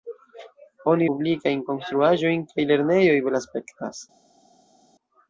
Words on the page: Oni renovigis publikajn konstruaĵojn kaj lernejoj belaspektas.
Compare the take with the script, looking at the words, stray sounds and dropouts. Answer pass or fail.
fail